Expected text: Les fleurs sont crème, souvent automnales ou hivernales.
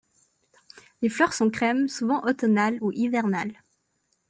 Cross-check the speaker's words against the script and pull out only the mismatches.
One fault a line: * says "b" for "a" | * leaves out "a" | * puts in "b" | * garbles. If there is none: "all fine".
all fine